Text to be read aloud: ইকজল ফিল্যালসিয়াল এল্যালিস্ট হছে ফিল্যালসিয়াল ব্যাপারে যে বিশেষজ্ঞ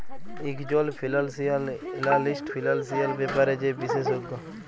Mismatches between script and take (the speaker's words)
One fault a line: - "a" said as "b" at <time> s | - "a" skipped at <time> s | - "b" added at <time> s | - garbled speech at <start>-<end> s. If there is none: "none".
- "হছে" skipped at 2.5 s